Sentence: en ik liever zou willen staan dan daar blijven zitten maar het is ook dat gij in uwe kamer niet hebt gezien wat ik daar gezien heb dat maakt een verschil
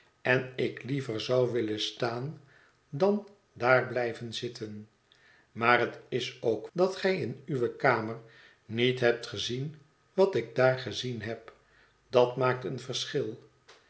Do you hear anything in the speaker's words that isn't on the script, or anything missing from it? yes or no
no